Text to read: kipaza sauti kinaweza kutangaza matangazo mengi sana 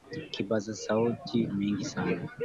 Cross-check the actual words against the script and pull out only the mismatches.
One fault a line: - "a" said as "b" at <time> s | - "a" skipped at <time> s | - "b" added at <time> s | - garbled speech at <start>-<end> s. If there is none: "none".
- "kinaweza kutangaza matangazo" skipped at 1.5 s